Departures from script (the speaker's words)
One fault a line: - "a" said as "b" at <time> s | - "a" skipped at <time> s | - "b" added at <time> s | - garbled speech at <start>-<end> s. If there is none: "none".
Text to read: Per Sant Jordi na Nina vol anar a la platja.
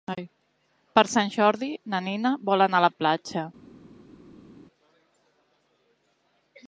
none